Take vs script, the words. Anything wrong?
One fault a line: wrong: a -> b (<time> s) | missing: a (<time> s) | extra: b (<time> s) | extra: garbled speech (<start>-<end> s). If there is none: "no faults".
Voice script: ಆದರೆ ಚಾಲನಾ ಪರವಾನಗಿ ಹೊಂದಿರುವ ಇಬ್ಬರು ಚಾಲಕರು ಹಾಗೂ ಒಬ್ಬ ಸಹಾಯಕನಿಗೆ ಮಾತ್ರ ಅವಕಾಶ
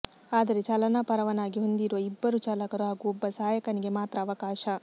no faults